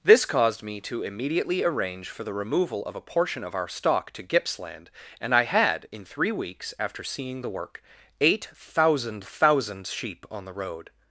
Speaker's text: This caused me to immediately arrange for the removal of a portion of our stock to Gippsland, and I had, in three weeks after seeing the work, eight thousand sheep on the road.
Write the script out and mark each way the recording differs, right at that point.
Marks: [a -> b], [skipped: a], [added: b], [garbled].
This caused me to immediately arrange for the removal of a portion of our stock to Gippsland, and I had, in three weeks after seeing the work, eight thousand [added: thousand] sheep on the road.